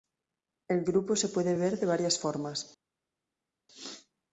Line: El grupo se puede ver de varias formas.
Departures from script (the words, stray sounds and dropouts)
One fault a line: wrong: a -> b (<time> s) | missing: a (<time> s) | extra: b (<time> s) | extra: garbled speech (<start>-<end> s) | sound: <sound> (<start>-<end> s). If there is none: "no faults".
no faults